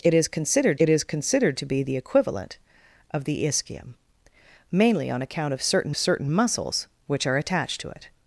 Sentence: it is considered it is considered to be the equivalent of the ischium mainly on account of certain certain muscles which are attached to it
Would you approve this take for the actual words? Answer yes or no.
yes